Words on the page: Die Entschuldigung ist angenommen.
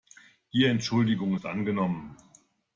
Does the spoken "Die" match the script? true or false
true